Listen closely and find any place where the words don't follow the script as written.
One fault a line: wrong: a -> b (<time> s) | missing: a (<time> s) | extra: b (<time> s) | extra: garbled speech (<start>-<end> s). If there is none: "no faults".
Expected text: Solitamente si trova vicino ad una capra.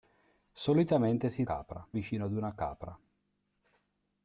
wrong: trova -> capra (1.4 s)